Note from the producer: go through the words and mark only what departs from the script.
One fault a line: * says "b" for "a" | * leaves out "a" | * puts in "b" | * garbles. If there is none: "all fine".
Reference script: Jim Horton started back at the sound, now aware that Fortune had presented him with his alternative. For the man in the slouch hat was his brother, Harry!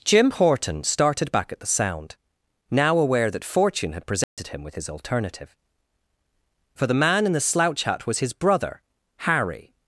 all fine